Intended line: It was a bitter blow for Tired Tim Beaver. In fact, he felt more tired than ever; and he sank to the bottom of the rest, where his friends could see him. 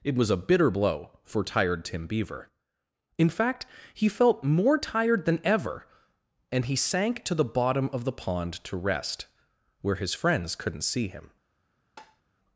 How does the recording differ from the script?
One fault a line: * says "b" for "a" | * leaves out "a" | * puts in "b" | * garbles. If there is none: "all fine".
* puts in "pond to"
* says "couldn't" for "could"